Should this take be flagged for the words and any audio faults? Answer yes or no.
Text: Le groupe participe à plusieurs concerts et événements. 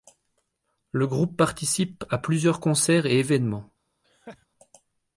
yes